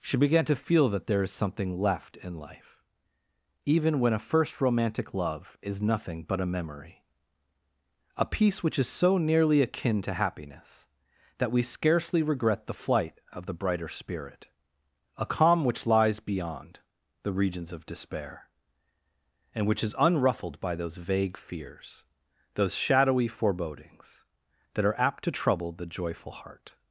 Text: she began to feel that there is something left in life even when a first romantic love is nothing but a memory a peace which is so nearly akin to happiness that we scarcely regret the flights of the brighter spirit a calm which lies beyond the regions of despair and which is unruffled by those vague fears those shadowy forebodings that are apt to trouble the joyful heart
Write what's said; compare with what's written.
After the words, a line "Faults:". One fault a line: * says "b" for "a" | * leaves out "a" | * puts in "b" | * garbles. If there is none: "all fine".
she began to feel that there is something left in life even when a first romantic love is nothing but a memory a peace which is so nearly akin to happiness that we scarcely regret the flight of the brighter spirit a calm which lies beyond the regions of despair and which is unruffled by those vague fears those shadowy forebodings that are apt to trouble the joyful heart
Faults:
* says "flight" for "flights"